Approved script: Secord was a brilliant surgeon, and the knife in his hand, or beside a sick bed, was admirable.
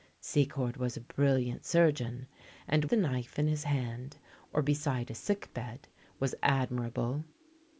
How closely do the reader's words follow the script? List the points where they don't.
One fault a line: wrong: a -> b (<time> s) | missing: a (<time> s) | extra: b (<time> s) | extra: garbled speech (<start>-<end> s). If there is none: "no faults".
no faults